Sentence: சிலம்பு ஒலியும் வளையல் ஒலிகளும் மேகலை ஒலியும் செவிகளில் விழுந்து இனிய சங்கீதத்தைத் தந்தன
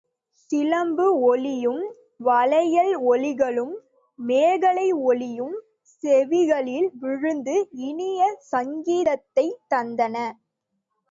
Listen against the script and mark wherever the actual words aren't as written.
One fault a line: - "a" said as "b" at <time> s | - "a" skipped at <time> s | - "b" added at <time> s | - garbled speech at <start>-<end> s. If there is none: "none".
none